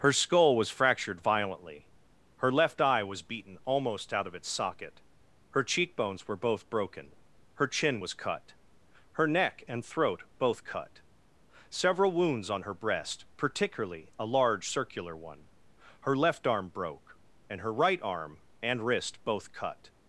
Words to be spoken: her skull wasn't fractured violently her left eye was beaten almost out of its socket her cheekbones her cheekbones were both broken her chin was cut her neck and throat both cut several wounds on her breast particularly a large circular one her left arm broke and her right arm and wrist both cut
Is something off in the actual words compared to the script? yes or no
yes